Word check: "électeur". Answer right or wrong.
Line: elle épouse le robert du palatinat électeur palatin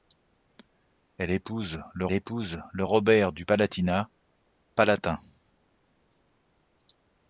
wrong